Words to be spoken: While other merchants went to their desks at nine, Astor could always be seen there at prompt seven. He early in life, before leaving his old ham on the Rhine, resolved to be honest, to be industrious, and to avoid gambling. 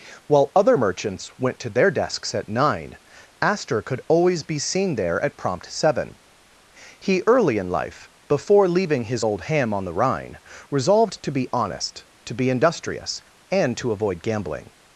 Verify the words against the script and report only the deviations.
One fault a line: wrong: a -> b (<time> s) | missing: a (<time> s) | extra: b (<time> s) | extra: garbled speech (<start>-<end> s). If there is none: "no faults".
no faults